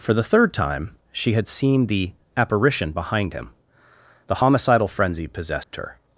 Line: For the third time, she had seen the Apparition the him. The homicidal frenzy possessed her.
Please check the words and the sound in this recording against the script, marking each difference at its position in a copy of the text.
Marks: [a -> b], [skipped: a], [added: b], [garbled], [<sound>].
For the third time, she had seen the Apparition [the -> behind] him. The homicidal frenzy possessed [dropout] her.